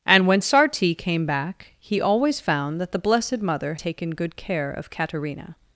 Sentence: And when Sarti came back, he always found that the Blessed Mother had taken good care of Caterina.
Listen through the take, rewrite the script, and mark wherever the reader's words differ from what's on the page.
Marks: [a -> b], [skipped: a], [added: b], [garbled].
And when Sarti came back, he always found that the Blessed Mother [skipped: had] taken good care of Caterina.